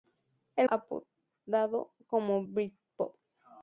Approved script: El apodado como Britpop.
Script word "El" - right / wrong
right